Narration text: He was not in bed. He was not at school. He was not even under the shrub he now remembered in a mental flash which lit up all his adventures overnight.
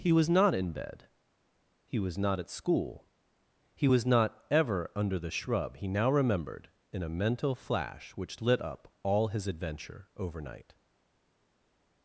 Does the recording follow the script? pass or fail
fail